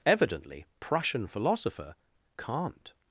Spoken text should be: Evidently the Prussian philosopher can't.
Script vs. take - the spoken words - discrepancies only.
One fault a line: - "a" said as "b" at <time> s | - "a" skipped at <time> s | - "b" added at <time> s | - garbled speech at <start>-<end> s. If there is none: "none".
- "the" skipped at 0.7 s